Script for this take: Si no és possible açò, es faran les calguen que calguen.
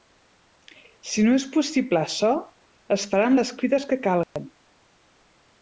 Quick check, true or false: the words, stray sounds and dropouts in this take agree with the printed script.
false